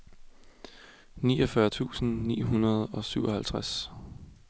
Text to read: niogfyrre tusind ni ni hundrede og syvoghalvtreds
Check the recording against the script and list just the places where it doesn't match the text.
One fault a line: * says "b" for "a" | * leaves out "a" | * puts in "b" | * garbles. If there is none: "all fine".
* leaves out "ni"